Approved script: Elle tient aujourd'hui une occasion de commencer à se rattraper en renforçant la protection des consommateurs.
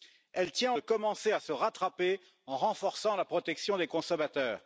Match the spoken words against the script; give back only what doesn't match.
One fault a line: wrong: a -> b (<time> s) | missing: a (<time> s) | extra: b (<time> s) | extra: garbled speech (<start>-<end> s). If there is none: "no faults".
missing: aujourd'hui une occasion (0.7 s)